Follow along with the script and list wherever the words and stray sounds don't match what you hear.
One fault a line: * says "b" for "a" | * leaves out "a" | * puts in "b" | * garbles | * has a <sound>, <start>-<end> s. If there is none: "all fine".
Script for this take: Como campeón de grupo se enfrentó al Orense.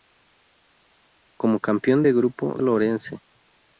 * leaves out "se enfrentó"